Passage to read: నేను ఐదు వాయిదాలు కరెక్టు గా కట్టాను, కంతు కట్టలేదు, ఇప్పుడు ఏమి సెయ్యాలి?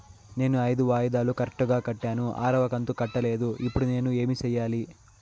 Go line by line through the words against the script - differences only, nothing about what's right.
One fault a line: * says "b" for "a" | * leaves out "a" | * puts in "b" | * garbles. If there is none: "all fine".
* puts in "ఆరవ"
* puts in "నేను"